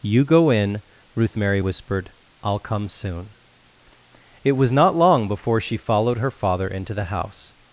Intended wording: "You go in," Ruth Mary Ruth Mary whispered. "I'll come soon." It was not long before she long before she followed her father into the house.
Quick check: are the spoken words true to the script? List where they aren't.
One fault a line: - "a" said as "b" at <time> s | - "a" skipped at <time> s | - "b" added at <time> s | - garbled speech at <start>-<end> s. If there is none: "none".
- "Ruth Mary" skipped at 1.6 s
- "long before she" skipped at 5.8 s